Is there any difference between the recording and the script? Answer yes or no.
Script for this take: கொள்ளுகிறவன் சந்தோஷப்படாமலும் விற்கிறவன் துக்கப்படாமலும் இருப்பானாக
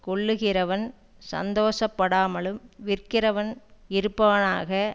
yes